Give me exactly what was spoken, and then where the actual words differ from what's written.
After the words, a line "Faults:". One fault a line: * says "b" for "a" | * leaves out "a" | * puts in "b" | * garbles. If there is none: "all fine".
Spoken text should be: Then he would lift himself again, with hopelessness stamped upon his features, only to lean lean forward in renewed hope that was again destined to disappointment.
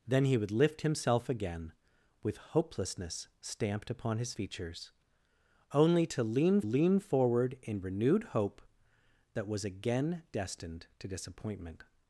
Then he would lift himself again, with hopelessness stamped upon his features, only to lean lean forward in renewed hope that was again destined to disappointment.
Faults:
all fine